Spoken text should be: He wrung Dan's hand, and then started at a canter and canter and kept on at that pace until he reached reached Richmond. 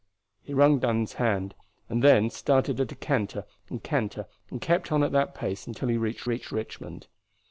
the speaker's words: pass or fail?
pass